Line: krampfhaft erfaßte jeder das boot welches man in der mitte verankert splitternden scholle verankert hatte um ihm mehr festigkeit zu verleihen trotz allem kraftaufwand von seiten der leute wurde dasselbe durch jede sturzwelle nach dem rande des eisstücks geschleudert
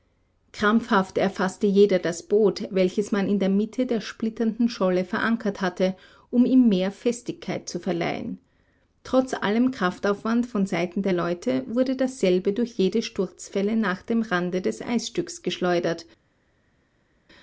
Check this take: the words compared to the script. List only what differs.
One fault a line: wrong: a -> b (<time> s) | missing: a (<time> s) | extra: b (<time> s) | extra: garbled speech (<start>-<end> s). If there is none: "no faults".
wrong: verankert -> der (3.9 s)